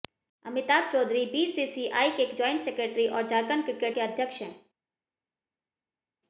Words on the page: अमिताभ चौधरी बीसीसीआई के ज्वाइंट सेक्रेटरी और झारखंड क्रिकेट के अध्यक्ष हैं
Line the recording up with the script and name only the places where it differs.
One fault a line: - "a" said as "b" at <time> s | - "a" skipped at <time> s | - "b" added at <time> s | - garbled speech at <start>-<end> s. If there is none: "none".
none